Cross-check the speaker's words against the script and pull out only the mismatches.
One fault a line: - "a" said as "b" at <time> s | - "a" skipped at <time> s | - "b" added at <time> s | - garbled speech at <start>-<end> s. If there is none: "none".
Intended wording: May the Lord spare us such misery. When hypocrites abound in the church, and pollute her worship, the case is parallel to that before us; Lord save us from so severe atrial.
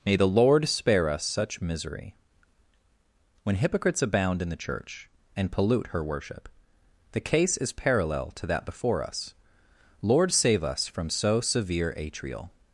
none